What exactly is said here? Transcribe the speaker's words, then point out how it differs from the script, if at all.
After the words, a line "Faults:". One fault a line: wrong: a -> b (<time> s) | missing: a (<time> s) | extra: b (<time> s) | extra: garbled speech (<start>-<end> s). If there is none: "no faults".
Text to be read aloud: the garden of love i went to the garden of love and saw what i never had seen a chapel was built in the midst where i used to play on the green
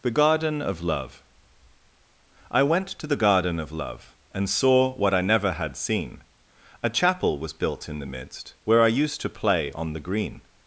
the garden of love i went to the garden of love and saw what i never had seen a chapel was built in the midst where i used to play on the green
Faults:
no faults